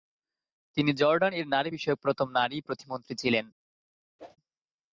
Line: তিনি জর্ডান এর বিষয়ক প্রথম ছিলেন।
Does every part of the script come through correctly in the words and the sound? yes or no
no